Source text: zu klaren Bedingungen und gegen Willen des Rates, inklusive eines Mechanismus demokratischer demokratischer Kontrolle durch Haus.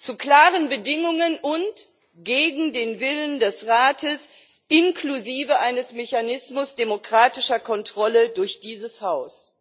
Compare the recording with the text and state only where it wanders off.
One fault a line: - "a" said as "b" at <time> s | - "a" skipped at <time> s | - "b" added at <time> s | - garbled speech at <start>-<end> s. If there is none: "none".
- "den" added at 2.7 s
- "demokratischer" skipped at 7.6 s
- "dieses" added at 8.6 s